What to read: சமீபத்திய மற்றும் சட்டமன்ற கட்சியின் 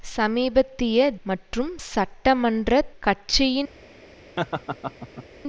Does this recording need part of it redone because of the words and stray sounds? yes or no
yes